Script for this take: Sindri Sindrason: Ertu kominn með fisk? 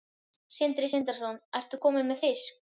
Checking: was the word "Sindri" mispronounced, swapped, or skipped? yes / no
no